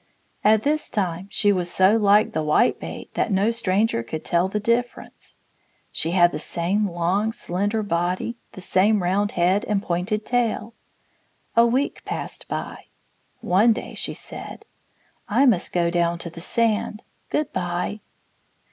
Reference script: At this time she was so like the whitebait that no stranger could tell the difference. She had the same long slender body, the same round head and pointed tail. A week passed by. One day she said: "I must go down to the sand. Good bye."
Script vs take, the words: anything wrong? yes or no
no